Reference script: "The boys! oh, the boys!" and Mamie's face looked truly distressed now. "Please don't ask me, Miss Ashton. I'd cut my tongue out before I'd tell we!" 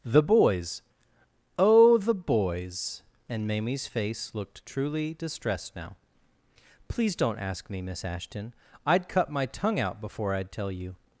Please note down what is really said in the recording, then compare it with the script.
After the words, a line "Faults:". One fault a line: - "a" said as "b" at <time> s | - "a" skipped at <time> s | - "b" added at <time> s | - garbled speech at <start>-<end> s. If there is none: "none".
"The boys! oh, the boys!" and Mamie's face looked truly distressed now. "Please don't ask me, Miss Ashton. I'd cut my tongue out before I'd tell you!"
Faults:
- "we" said as "you" at 10.7 s